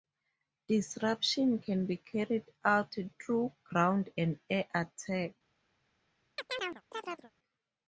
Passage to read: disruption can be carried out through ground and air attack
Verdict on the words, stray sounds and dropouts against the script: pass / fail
fail